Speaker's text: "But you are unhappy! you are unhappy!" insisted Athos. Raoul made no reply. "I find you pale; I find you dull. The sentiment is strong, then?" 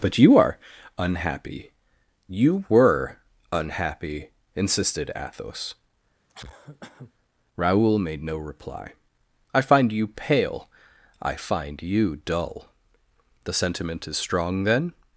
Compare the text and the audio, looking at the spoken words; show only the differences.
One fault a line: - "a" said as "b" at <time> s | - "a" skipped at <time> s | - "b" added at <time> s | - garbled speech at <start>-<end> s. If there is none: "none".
- "are" said as "were" at 2.7 s